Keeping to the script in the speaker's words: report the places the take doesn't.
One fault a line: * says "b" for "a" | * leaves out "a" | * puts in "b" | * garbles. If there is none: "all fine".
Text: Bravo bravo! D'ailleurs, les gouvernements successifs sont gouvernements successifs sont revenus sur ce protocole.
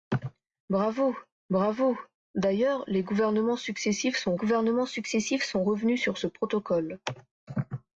all fine